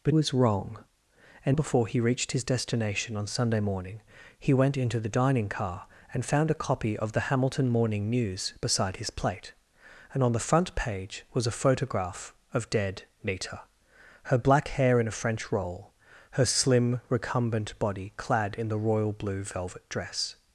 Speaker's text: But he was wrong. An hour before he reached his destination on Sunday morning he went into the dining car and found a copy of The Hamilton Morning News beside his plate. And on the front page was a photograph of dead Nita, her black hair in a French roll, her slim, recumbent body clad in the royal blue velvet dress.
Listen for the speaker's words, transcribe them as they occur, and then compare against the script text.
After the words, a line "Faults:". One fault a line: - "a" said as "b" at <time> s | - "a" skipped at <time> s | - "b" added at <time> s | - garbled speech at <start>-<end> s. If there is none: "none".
But was wrong. An before he reached his destination on Sunday morning he went into the dining car and found a copy of The Hamilton Morning News beside his plate. And on the front page was a photograph of dead Nita, her black hair in a French roll, her slim, recumbent body clad in the royal blue velvet dress.
Faults:
- "he" skipped at 0.1 s
- "hour" skipped at 1.6 s